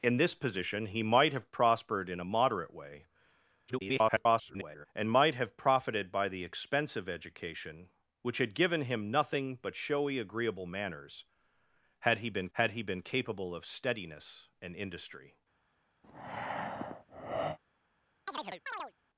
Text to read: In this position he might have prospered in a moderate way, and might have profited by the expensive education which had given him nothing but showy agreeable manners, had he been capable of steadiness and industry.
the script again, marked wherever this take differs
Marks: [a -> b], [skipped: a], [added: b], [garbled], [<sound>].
In this position he might have prospered in a moderate way, [garbled] and might have profited by the expensive education which had given him nothing but showy agreeable manners, had he been [added: had he been] capable of steadiness and industry. [breath] [chirp]